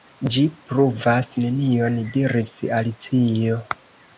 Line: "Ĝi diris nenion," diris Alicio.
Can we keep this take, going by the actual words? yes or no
no